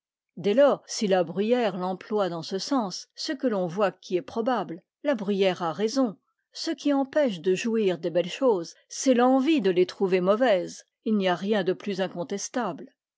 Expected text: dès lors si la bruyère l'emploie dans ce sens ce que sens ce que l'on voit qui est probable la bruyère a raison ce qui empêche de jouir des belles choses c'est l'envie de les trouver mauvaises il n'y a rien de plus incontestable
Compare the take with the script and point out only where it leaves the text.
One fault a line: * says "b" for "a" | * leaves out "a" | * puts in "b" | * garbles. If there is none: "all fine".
* leaves out "sens ce que"